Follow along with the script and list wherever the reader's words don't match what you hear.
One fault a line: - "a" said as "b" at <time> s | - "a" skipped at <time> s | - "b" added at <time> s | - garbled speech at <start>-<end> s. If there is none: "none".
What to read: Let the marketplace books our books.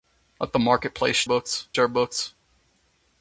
none